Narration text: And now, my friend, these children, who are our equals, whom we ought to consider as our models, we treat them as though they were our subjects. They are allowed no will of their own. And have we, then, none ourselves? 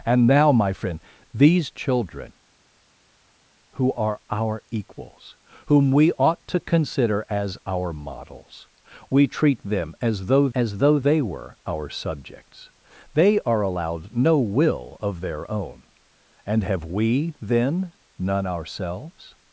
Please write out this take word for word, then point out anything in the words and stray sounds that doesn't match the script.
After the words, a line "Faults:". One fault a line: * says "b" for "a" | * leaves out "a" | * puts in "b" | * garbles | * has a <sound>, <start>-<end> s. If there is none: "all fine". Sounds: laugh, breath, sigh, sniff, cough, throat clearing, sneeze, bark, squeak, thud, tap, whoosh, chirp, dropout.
And now, my friend, these children, who are our equals, whom we ought to consider as our models, we treat them as though as though they were our subjects. They are allowed no will of their own. And have we, then, none ourselves?
Faults:
* puts in "as though"